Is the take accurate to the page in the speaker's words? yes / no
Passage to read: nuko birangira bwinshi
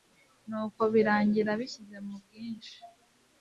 no